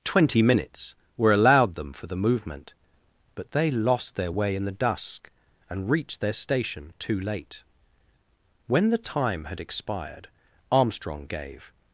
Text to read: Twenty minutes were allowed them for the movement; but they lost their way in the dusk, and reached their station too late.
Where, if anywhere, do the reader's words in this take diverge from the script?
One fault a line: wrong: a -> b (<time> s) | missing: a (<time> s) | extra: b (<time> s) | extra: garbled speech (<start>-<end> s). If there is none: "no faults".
extra: When the time had expired Armstrong gave (8.7 s)